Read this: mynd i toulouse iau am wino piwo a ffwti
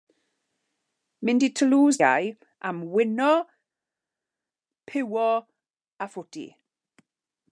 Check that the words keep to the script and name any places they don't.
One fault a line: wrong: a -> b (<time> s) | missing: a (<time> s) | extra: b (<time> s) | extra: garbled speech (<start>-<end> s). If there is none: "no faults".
no faults